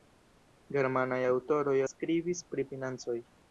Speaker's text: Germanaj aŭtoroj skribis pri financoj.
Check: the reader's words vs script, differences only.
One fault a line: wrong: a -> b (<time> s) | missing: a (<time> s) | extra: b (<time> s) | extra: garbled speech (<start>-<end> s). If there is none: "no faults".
no faults